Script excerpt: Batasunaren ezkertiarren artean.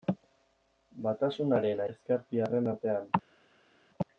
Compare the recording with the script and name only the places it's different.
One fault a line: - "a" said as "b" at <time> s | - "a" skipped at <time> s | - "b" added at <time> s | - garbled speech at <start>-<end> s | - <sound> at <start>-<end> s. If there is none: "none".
none